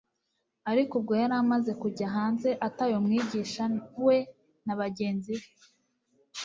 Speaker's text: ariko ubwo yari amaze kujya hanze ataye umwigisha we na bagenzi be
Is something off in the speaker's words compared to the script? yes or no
no